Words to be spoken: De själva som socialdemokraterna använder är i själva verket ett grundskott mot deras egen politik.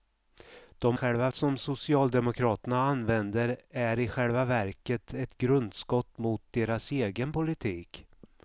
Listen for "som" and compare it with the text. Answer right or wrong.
right